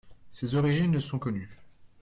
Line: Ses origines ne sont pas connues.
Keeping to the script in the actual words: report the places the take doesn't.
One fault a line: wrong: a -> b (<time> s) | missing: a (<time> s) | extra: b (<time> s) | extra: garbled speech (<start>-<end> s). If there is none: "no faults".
missing: pas (1.2 s)